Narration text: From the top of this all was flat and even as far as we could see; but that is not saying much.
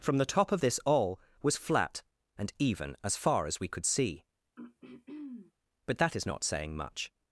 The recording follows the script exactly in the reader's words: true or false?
true